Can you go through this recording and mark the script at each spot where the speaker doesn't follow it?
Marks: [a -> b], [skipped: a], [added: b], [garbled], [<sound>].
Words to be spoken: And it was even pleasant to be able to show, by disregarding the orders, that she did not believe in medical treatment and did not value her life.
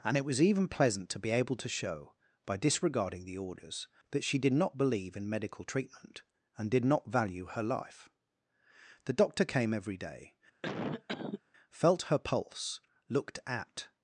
And it was even pleasant to be able to show, by disregarding the orders, that she did not believe in medical treatment and did not value her life. [added: The doctor came every day felt her pulse looked at] [cough]